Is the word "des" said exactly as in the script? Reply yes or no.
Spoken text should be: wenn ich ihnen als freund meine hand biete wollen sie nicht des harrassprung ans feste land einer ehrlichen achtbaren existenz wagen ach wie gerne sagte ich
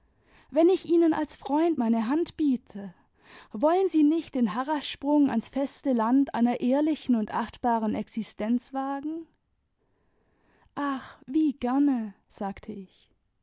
no